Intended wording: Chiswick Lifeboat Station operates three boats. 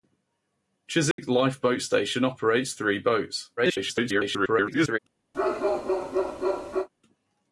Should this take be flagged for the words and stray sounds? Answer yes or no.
yes